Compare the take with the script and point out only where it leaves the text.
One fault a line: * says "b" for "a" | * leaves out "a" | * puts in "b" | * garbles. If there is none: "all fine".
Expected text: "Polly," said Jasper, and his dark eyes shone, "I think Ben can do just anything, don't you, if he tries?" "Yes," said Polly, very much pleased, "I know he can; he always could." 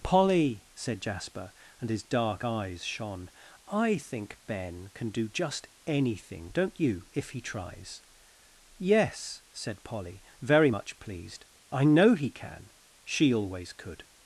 * says "she" for "he"